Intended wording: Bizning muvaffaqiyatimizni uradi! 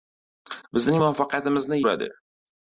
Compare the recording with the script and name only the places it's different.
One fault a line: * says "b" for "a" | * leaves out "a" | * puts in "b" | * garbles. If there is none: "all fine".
all fine